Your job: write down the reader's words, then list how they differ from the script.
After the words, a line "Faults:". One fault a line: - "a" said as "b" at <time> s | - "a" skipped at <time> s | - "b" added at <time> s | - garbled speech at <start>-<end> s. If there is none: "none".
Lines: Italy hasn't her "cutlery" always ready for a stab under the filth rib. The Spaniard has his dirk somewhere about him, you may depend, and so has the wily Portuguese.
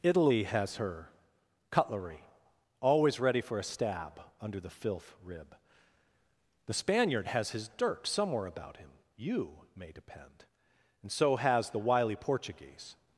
Italy has her "cutlery" always ready for a stab under the filth rib. The Spaniard has his dirk somewhere about him, you may depend, and so has the wily Portuguese.
Faults:
- "hasn't" said as "has" at 0.5 s